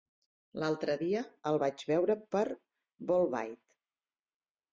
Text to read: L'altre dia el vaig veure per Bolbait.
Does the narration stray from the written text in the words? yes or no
no